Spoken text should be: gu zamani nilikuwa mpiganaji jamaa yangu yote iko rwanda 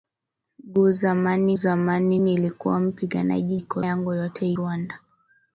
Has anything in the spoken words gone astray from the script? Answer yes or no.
yes